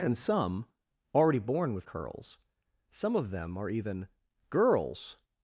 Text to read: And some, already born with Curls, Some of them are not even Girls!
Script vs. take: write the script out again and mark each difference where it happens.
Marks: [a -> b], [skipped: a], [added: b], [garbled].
And some, already born with Curls, Some of them are [skipped: not] even Girls!